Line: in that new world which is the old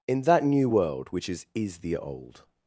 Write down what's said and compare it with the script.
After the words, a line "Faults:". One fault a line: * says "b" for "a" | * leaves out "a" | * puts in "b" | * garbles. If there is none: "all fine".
in that new world which is is the old
Faults:
* puts in "is"